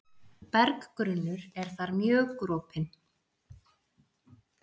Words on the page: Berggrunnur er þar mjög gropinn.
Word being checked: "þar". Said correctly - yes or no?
yes